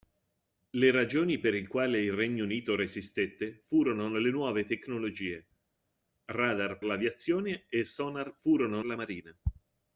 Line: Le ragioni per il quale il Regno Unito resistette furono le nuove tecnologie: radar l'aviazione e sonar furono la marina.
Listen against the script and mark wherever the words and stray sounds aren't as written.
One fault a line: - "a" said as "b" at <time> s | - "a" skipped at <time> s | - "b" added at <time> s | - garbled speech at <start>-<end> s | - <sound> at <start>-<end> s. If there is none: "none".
none